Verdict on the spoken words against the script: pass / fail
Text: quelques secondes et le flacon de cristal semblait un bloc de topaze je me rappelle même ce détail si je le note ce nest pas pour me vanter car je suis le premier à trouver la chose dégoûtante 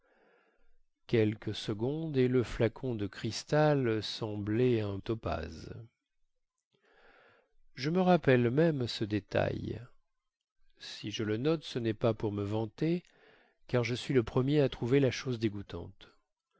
fail